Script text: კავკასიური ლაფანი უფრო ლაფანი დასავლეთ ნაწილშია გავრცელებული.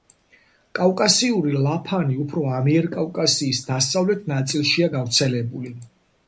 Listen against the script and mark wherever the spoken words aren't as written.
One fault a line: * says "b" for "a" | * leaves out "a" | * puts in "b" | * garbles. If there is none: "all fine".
* says "ამიერკავკასიის" for "ლაფანი"